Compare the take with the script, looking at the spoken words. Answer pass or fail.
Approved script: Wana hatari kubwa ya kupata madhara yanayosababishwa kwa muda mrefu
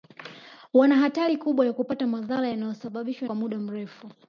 pass